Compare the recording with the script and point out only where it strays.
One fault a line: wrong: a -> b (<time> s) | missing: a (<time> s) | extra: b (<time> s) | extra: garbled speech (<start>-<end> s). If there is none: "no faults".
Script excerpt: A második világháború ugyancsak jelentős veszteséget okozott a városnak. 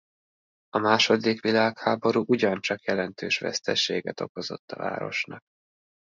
no faults